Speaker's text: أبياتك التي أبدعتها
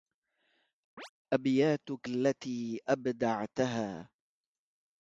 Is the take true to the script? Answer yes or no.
yes